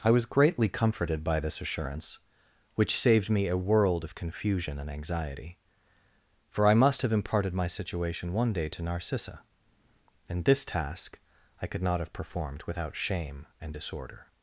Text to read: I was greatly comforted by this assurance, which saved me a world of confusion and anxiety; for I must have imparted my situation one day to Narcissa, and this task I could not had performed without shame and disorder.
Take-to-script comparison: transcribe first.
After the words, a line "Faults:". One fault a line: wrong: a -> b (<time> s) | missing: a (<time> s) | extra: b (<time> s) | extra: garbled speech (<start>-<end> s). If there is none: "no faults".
I was greatly comforted by this assurance, which saved me a world of confusion and anxiety; for I must have imparted my situation one day to Narcissa, and this task I could not have performed without shame and disorder.
Faults:
wrong: had -> have (12.0 s)